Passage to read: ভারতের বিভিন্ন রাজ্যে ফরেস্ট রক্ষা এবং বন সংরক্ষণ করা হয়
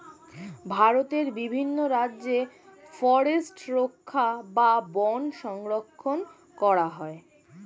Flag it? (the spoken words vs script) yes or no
yes